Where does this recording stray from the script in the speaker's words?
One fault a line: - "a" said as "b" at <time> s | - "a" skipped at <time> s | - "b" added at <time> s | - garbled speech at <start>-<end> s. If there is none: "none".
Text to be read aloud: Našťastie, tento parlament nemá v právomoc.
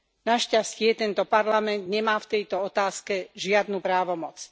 - "tejto otázke žiadnu" added at 2.4 s